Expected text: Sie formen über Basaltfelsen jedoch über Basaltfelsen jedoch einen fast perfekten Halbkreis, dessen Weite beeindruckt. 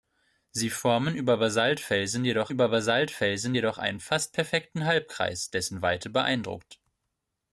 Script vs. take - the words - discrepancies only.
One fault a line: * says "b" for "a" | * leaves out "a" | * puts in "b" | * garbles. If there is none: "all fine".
all fine